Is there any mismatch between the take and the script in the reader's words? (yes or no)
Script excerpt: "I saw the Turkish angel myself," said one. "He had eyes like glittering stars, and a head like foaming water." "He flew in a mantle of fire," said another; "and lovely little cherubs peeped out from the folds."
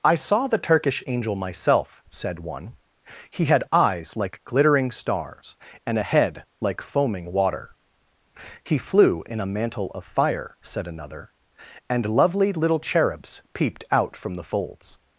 no